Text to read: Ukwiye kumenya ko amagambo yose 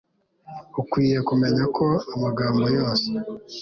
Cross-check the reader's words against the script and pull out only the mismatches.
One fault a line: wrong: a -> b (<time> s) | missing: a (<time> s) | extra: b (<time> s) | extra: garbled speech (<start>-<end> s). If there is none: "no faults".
no faults